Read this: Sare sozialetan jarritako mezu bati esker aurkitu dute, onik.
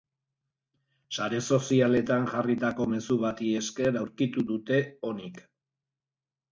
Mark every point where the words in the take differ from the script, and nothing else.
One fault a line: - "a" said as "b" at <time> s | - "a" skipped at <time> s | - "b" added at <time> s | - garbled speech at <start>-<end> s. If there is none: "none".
none